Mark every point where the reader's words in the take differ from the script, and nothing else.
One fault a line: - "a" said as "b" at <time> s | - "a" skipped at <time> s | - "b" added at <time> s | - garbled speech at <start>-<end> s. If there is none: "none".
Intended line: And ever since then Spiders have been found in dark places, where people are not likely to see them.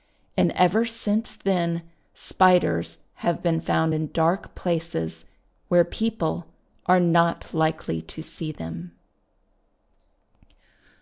none